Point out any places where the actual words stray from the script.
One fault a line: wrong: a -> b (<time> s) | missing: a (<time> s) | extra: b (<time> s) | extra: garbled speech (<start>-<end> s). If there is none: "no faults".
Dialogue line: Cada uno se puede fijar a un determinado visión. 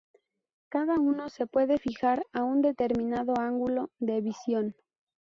extra: ángulo de (3.4 s)